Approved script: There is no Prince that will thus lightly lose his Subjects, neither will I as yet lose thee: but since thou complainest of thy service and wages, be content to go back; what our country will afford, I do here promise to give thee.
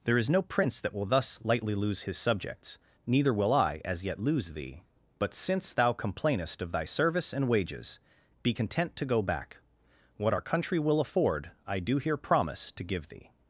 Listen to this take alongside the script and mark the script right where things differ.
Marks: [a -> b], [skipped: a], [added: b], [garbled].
There is no Prince that will thus lightly lose his Subjects, neither will I as yet lose thee: but since thou complainest of thy service and wages, be content to go back; what our country will afford, I do here promise to give thee.